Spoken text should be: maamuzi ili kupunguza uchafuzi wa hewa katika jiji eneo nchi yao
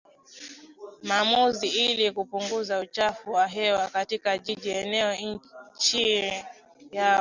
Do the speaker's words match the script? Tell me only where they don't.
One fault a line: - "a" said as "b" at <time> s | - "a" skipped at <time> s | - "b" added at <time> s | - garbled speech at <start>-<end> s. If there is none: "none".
none